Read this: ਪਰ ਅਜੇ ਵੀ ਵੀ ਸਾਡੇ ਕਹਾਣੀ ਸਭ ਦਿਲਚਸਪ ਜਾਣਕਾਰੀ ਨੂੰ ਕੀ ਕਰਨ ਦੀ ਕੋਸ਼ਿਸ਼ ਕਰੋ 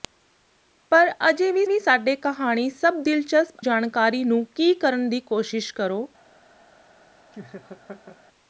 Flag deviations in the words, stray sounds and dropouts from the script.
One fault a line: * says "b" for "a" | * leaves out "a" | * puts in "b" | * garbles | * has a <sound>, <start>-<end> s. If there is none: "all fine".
* has a laugh, 7.3-8.2 s